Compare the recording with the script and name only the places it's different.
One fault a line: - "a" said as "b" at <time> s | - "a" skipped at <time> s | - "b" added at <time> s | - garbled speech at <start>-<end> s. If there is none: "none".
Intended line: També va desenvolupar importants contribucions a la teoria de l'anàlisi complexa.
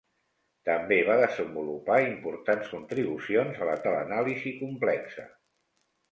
- "teoria" skipped at 3.7 s